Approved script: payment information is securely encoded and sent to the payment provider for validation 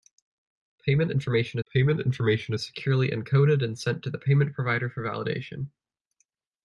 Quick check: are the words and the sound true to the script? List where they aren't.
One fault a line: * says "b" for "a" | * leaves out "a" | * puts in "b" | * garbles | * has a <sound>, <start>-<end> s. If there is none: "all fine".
* puts in "payment information"